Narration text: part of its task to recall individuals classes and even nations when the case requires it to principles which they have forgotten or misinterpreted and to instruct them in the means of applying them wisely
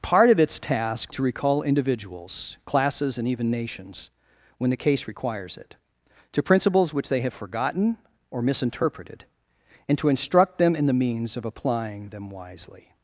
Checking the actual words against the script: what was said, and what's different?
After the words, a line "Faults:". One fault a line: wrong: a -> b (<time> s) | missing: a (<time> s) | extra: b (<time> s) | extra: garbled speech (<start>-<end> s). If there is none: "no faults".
part of its task to recall individuals classes and even nations when the case requires it to principles which they have forgotten or misinterpreted and to instruct them in the means of applying them wisely
Faults:
no faults